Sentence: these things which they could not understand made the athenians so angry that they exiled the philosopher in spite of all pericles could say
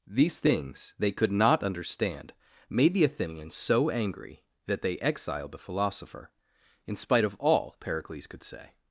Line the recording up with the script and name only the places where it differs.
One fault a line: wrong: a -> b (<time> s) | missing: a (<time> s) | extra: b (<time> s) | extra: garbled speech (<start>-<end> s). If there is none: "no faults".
missing: which (0.9 s)